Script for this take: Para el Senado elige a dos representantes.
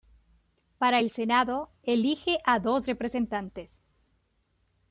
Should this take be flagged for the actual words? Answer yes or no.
no